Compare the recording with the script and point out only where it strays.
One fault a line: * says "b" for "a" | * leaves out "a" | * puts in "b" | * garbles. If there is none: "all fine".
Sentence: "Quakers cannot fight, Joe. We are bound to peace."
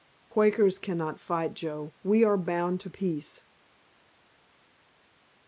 all fine